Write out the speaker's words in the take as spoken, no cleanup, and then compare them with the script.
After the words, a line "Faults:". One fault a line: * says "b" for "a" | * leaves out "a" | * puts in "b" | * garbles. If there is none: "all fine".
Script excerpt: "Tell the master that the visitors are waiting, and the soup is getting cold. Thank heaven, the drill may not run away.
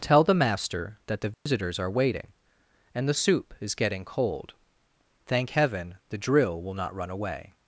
"Tell the master that the visitors are waiting, and the soup is getting cold. Thank heaven, the drill will not run away.
Faults:
* says "will" for "may"